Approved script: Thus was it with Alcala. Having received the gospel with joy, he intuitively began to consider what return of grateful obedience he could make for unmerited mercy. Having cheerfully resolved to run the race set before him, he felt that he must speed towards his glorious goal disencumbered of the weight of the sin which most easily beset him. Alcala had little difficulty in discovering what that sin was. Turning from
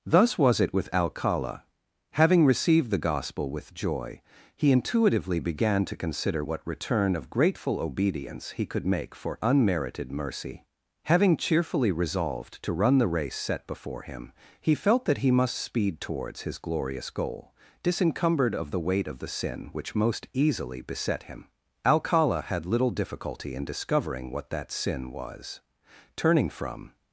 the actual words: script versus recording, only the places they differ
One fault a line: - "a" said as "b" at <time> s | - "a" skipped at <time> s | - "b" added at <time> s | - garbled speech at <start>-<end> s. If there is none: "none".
none